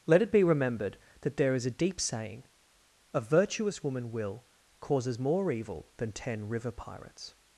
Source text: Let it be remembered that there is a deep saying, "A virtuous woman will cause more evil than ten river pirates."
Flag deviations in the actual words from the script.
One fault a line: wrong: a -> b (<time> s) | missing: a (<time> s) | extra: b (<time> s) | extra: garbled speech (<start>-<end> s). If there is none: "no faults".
wrong: cause -> causes (4.8 s)